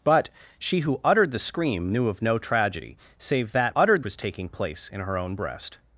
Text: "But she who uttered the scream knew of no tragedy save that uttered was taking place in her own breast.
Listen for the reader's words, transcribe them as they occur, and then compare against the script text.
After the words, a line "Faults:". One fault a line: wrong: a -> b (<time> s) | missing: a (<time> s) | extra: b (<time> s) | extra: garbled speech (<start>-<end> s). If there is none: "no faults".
"But she who uttered the scream knew of no tragedy save that uttered was taking place in her own breast.
Faults:
no faults